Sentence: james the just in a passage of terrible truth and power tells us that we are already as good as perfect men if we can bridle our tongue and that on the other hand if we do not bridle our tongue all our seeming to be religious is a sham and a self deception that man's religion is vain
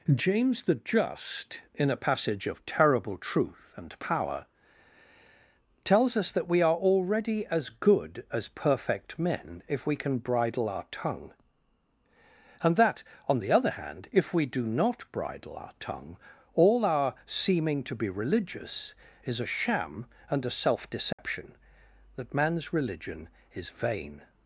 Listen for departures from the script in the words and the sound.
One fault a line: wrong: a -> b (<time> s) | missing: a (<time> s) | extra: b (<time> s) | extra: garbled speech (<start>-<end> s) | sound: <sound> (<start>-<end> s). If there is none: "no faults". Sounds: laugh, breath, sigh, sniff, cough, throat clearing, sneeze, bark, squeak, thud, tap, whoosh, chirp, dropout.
sound: dropout (21.1-21.2 s)